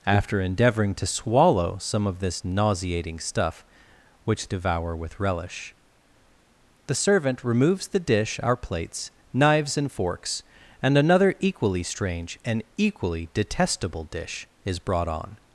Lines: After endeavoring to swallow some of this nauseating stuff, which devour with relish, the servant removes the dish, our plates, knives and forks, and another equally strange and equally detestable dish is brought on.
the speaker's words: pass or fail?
pass